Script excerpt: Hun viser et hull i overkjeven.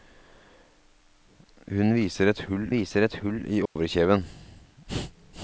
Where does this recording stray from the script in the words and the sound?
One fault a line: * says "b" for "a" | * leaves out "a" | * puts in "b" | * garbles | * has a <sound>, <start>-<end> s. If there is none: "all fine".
* puts in "viser et hull"
* has a dropout, 3.7-3.8 s